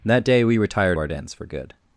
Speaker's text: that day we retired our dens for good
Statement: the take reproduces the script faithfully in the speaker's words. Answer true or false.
true